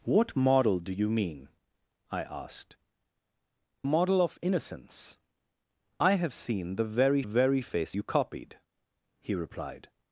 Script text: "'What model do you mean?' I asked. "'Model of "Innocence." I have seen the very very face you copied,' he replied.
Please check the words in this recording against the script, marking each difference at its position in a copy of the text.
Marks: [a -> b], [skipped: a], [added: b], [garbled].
"'What model do you mean?' I asked. "'Model of "Innocence." I have seen the very very face you copied,' he replied.